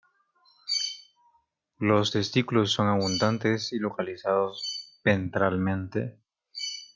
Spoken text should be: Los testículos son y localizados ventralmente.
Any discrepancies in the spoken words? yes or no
yes